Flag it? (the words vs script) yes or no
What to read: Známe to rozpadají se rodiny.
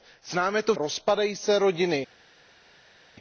no